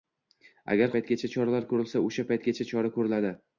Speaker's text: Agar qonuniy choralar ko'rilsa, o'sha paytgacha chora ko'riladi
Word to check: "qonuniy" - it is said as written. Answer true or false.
false